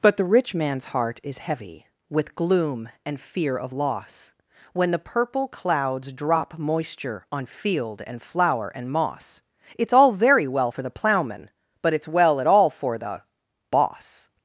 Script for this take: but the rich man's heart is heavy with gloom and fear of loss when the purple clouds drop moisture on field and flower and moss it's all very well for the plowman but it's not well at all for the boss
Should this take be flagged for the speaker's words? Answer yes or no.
yes